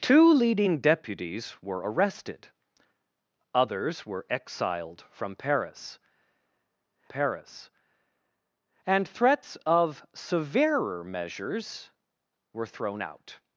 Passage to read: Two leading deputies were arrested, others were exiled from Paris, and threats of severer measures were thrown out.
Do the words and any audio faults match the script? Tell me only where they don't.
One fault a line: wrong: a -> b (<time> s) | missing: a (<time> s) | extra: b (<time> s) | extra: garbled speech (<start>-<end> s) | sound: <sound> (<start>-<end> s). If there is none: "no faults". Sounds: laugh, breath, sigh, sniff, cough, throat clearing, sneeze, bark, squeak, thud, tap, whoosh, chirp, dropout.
extra: Paris (7.1 s)